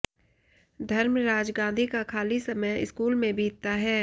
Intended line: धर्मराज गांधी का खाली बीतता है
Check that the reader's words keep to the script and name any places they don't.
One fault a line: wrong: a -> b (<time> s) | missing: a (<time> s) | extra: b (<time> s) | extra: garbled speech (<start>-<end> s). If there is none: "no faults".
extra: समय स्कूल में (2.4 s)